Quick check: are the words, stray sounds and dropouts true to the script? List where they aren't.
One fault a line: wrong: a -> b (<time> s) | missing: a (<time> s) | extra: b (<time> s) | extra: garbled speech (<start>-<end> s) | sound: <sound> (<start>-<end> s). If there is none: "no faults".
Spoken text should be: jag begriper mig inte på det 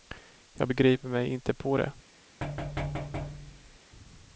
sound: thud (2.4-3.8 s)